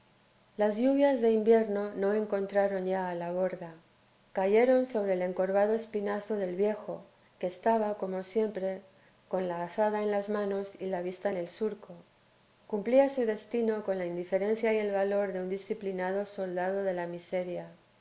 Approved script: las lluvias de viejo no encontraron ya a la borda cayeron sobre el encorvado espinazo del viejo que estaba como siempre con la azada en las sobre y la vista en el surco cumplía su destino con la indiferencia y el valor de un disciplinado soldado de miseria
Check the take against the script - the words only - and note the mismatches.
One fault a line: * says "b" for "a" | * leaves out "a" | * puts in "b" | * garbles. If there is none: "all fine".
* says "invierno" for "viejo"
* says "manos" for "sobre"
* puts in "la"